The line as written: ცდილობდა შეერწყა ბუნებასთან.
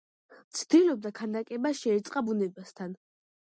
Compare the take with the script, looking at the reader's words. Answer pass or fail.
fail